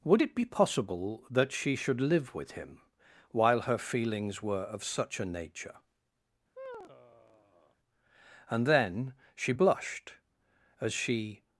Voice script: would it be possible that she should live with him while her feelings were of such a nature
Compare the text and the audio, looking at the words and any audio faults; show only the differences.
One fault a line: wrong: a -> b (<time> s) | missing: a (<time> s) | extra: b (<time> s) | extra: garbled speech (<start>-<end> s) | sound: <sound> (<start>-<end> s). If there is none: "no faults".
sound: sigh (6.6-7.8 s)
extra: and then she blushed as she (8.5 s)